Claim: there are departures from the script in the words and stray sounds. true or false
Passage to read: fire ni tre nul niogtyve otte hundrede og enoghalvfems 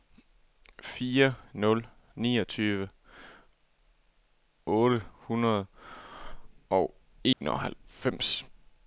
true